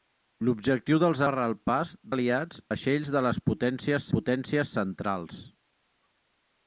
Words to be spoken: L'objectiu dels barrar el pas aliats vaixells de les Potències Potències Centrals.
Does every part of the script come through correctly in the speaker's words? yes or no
yes